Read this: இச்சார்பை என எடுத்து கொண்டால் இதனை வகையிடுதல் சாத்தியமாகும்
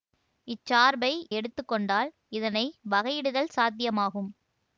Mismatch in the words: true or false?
true